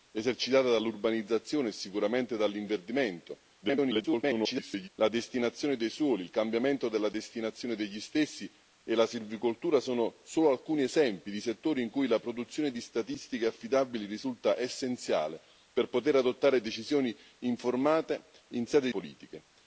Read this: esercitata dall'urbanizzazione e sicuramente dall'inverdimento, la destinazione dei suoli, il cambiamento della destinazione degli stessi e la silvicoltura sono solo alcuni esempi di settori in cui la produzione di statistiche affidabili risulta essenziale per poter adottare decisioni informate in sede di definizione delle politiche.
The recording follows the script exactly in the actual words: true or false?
false